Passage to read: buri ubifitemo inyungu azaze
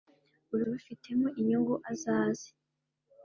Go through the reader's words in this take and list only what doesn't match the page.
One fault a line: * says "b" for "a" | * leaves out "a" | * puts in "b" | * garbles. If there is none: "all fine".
all fine